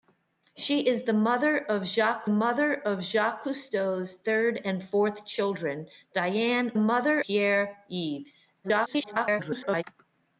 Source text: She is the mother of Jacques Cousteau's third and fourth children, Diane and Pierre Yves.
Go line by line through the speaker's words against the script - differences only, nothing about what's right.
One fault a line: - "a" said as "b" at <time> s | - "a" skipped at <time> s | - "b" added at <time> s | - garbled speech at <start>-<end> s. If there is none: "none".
- "mother of Jacques" added at 2.3 s
- "and" said as "mother" at 6.8 s
- garbled speech at 8.6-9.8 s